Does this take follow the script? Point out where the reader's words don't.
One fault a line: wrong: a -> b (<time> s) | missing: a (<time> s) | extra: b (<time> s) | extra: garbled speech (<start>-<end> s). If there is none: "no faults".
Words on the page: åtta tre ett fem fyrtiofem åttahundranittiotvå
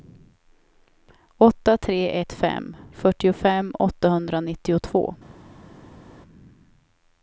no faults